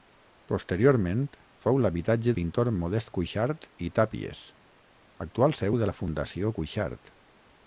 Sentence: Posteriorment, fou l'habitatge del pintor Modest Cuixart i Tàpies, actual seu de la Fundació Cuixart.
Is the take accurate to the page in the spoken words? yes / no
no